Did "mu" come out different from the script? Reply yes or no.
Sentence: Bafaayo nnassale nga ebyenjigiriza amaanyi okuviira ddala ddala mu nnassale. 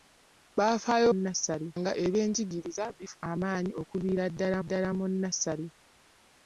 no